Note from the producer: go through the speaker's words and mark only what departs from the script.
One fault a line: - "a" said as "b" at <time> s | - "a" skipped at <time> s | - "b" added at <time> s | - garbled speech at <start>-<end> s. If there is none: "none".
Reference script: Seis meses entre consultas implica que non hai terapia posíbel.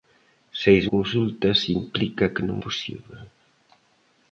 - "meses entre" skipped at 0.8 s
- "hai terapia" skipped at 2.6 s